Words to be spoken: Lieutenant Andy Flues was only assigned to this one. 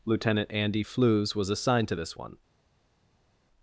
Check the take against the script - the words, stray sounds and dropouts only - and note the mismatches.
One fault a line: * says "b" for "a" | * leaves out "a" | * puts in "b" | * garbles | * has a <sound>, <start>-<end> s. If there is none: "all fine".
* leaves out "only"